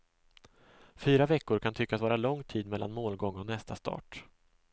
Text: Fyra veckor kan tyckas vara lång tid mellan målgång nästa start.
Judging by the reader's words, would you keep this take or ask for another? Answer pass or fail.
fail